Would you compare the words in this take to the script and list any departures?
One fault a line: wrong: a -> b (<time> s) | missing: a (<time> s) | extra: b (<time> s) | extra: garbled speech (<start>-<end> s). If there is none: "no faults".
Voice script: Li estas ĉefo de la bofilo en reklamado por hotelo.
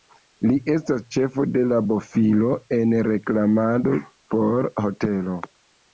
no faults